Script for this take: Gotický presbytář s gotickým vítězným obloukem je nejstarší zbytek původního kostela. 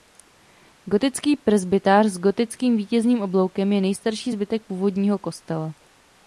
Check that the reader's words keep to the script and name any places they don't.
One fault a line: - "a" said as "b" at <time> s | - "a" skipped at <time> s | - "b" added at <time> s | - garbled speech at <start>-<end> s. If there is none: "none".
none